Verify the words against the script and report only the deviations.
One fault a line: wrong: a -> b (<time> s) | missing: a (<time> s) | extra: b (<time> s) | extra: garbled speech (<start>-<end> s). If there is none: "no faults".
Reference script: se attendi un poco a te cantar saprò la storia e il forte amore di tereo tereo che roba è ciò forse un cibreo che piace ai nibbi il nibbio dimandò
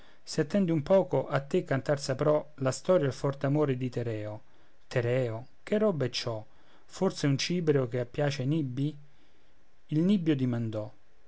no faults